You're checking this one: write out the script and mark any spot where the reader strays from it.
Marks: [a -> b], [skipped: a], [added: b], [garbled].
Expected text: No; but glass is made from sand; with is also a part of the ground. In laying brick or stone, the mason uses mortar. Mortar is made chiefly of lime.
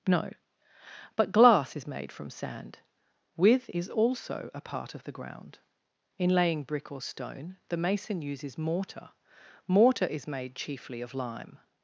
No; but glass is made from sand; with is also a part of the ground. In laying brick or stone, the mason uses mortar. Mortar is made chiefly of lime.